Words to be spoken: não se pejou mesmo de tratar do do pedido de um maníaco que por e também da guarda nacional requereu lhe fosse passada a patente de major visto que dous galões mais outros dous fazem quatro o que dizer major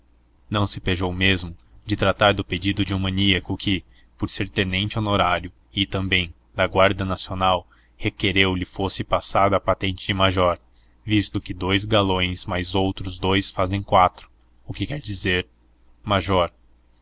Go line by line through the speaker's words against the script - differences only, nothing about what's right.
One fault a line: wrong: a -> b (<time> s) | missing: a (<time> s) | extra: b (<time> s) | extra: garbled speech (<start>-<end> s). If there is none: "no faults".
missing: do (2.4 s)
extra: ser tenente honorário (4.3 s)
extra: quer (14.9 s)